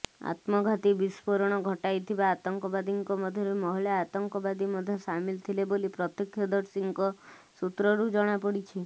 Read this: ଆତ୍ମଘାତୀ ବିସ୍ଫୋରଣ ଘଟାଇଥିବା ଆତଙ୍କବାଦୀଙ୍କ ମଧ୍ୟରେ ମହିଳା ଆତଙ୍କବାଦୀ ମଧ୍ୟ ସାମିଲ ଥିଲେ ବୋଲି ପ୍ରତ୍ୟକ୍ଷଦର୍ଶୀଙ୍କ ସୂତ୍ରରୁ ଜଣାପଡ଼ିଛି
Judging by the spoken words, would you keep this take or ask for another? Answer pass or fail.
pass